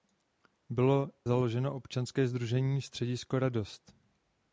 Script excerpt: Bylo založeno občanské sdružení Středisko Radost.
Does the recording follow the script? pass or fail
pass